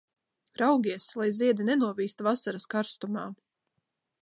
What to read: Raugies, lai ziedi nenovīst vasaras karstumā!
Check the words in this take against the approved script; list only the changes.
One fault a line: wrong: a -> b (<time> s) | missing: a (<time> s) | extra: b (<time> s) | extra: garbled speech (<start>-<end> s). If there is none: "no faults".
no faults